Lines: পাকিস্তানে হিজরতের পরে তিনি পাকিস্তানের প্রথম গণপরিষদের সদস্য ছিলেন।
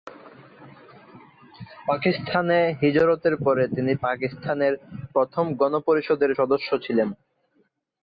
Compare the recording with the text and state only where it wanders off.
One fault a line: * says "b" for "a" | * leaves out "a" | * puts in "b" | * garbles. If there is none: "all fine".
all fine